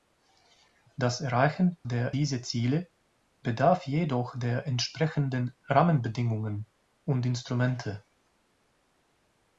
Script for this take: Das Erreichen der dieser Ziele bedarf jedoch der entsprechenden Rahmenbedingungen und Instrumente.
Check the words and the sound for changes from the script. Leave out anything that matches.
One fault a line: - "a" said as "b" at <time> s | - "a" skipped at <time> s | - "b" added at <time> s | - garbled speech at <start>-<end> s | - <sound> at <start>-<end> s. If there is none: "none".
none